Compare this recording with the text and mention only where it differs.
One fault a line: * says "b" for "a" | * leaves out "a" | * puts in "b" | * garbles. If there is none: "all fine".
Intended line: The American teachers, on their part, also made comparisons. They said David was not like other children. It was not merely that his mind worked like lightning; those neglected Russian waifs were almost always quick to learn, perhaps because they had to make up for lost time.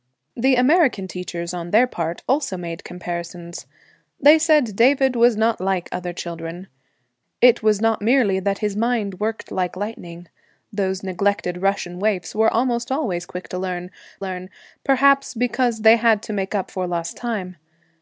* puts in "learn"